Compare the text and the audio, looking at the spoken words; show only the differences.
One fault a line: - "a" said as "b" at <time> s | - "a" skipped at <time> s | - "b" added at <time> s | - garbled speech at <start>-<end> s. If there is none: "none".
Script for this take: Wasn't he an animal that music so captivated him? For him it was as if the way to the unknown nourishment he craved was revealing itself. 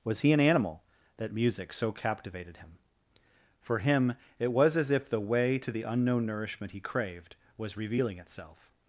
- "Wasn't" said as "Was" at 0.0 s